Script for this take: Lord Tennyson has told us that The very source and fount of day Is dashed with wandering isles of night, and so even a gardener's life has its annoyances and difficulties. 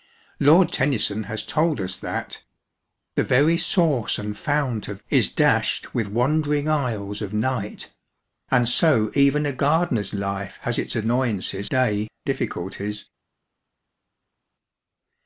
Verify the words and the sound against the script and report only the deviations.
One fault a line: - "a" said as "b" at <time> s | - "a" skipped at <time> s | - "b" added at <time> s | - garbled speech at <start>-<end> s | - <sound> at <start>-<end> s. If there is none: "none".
- "day" skipped at 5.0 s
- "and" said as "day" at 11.7 s